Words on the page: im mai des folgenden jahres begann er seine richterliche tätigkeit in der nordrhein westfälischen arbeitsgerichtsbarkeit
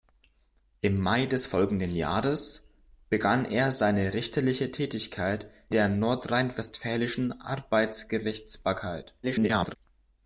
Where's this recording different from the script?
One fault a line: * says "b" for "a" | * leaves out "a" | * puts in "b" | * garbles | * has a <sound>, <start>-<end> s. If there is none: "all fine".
* leaves out "in"
* garbles